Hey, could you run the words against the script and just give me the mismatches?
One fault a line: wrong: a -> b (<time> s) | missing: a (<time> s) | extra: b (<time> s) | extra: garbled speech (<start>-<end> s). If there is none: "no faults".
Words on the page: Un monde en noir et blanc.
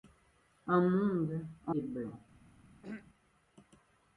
missing: noir (1.8 s)